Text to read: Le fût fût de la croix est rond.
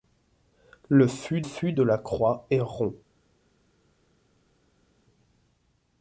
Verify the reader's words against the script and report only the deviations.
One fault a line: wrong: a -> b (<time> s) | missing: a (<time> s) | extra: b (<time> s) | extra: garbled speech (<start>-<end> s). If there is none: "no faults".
no faults